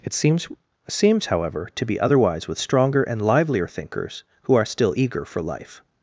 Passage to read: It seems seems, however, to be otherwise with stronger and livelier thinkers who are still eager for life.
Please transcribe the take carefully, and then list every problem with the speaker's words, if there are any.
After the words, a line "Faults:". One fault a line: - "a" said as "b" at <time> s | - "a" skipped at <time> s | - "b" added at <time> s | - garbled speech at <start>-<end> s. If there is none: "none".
It seems seems, however, to be otherwise with stronger and livelier thinkers who are still eager for life.
Faults:
none